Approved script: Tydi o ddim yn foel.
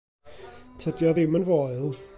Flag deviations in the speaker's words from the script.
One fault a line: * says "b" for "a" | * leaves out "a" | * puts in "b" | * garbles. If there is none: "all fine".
all fine